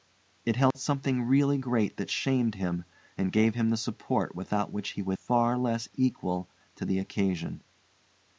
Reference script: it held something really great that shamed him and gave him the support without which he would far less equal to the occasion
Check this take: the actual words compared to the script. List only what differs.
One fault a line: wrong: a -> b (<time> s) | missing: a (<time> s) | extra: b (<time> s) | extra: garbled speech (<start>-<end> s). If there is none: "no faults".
no faults